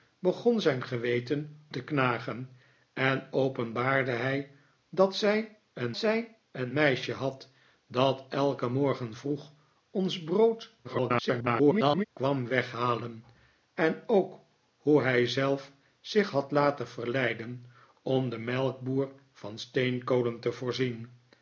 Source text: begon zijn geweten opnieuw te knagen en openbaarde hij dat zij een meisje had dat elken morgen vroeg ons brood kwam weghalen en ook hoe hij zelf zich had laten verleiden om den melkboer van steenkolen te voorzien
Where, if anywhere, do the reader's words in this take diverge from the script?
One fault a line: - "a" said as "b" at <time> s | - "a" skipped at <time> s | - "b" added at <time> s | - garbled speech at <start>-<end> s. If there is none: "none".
- "opnieuw" skipped at 1.6 s
- "zij een" added at 6.0 s
- garbled speech at 10.8-12.0 s